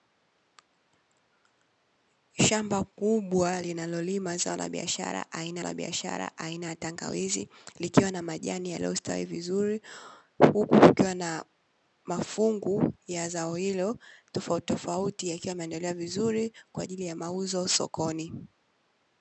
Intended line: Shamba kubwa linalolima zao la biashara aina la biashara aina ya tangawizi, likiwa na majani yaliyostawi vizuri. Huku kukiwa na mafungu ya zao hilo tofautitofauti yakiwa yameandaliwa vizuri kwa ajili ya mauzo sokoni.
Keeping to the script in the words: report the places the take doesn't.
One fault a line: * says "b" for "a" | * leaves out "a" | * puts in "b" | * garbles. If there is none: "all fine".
all fine